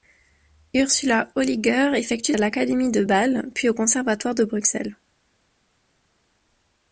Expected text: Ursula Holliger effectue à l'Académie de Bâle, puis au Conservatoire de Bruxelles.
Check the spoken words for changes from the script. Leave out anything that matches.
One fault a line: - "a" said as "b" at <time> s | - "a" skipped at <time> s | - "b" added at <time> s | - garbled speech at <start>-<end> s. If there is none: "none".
none